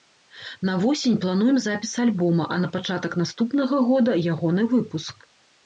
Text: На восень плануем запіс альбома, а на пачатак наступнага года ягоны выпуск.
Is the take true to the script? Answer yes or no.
yes